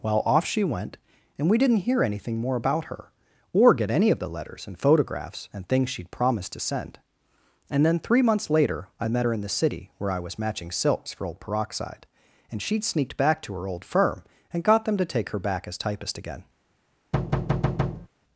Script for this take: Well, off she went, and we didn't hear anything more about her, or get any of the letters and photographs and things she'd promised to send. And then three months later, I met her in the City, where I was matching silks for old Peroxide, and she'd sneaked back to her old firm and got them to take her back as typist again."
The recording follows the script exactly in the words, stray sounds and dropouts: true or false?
false